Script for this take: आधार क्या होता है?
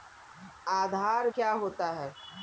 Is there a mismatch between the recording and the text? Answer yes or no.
no